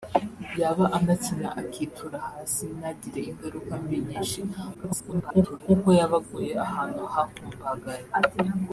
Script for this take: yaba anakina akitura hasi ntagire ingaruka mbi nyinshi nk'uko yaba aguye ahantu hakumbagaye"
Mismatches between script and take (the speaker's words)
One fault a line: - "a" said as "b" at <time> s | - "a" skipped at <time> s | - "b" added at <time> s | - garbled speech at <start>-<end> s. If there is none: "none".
- garbled speech at 4.7-5.6 s